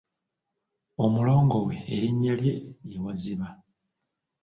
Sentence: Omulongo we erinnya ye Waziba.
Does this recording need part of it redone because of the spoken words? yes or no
yes